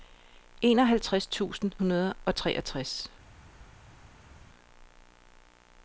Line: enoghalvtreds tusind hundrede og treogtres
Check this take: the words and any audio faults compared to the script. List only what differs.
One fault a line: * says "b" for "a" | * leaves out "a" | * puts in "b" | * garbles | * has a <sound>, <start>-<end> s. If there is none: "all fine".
all fine